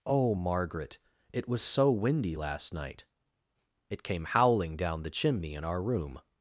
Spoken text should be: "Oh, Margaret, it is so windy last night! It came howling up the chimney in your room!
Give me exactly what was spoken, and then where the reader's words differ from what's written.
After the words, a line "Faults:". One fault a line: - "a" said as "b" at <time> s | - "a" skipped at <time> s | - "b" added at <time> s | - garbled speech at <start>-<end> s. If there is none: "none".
"Oh, Margaret, it was so windy last night! It came howling down the chimney in our room!
Faults:
- "is" said as "was" at 1.5 s
- "up" said as "down" at 4.8 s
- "your" said as "our" at 5.6 s